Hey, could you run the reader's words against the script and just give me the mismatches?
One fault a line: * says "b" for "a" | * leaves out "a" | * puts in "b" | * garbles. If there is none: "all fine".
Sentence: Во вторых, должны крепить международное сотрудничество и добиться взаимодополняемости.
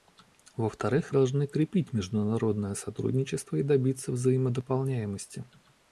all fine